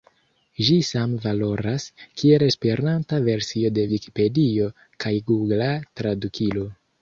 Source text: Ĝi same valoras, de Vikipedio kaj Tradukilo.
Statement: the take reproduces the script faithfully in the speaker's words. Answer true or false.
false